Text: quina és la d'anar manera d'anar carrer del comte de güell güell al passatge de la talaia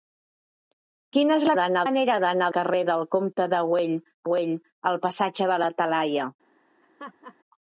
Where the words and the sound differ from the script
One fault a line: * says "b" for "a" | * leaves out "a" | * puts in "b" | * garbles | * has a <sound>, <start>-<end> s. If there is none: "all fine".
* has a laugh, 6.8-7.4 s